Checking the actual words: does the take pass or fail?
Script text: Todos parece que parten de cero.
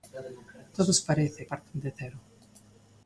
fail